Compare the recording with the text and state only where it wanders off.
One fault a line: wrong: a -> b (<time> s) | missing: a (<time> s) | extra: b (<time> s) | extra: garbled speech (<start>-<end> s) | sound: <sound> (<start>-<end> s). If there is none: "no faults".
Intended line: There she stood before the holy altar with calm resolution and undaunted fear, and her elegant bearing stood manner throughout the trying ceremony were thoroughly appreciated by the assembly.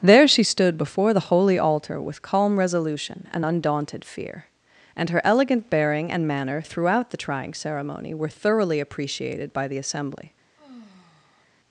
wrong: stood -> and (6.1 s)
sound: sigh (10.6-11.5 s)